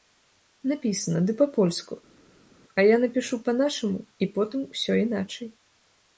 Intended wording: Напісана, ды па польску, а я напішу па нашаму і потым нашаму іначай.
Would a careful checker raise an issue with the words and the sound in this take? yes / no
yes